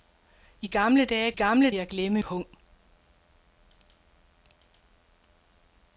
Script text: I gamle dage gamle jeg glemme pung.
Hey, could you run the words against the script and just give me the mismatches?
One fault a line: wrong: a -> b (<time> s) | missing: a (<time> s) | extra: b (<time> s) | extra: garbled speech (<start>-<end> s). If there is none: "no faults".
no faults